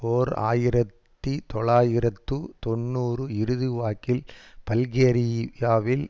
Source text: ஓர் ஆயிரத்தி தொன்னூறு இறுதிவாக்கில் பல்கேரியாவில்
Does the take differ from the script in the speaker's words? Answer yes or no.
yes